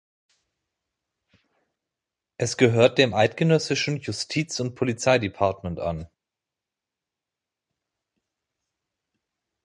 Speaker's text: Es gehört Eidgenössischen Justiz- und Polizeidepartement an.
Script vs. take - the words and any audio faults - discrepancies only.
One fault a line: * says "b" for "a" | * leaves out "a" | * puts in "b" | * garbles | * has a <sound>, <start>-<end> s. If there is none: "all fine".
* puts in "dem"